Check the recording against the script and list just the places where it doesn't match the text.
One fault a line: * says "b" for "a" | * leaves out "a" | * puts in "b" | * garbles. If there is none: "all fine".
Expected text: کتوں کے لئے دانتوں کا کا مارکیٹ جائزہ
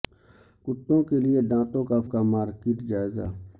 all fine